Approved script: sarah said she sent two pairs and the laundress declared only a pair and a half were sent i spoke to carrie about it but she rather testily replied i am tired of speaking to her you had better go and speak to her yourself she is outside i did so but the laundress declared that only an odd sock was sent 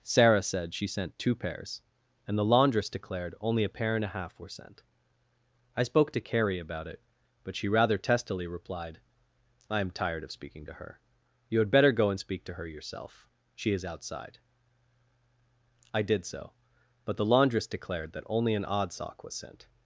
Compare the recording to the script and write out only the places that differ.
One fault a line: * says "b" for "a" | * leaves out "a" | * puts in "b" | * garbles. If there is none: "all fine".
all fine